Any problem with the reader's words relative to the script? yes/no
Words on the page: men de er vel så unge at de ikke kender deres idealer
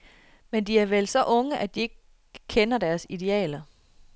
no